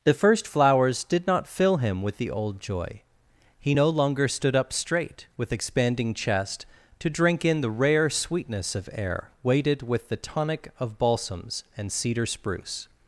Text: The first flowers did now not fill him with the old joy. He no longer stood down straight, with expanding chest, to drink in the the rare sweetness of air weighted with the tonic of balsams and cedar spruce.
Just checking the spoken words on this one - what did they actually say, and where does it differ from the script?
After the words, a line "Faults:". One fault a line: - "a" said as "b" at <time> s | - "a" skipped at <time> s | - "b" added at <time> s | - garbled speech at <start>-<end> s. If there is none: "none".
The first flowers did not fill him with the old joy. He no longer stood up straight, with expanding chest, to drink in the rare sweetness of air weighted with the tonic of balsams and cedar spruce.
Faults:
- "now" skipped at 1.3 s
- "down" said as "up" at 4.5 s
- "the" skipped at 7.7 s